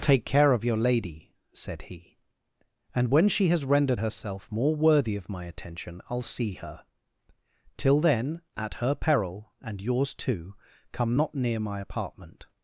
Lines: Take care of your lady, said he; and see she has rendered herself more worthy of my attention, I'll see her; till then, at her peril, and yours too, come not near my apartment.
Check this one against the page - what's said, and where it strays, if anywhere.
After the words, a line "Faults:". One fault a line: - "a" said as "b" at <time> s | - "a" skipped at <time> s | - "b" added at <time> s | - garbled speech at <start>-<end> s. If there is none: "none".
Take care of your lady, said he; and when she has rendered herself more worthy of my attention, I'll see her; till then, at her peril, and yours too, come not near my apartment.
Faults:
- "see" said as "when" at 3.1 s